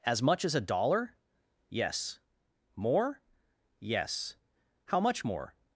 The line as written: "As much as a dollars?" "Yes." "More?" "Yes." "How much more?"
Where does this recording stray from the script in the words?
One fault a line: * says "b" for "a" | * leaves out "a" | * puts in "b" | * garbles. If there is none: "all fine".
* says "dollar" for "dollars"